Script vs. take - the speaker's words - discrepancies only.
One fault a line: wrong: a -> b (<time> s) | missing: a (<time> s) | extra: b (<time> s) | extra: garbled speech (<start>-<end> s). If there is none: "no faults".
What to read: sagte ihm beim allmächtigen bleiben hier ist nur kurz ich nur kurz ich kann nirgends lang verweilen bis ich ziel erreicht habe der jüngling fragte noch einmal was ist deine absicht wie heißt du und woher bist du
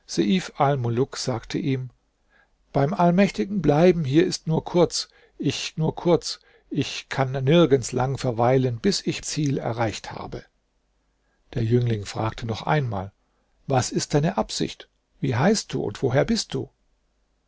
no faults